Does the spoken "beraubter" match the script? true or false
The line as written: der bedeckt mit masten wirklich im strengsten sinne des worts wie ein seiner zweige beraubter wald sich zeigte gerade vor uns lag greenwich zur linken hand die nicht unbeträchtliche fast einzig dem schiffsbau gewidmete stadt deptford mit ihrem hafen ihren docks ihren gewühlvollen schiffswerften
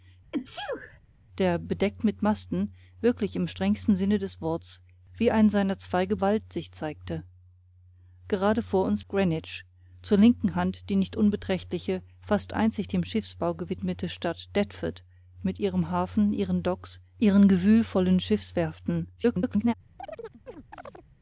false